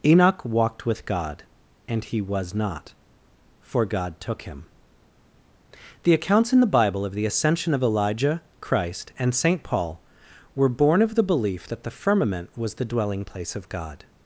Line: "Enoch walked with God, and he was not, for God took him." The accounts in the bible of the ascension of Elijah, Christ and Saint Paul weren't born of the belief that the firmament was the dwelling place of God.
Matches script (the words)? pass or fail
fail